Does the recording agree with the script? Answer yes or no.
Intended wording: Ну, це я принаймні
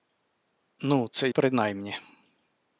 no